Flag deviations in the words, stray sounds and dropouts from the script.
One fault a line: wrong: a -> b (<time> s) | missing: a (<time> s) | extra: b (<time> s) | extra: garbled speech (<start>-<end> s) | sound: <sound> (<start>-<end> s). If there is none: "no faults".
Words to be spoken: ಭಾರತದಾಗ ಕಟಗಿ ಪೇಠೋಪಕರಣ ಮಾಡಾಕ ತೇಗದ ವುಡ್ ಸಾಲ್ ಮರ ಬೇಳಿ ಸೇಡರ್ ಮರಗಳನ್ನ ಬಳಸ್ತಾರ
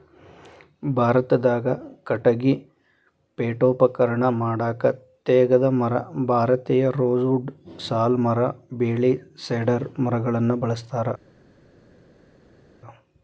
extra: ಮರ ಭಾರತೇಯ ರೋಸ್ (5.7 s)